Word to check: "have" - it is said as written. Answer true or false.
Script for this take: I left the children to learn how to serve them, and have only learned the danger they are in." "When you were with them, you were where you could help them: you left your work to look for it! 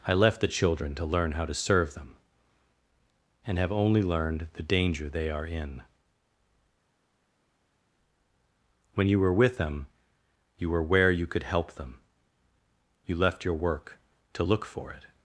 true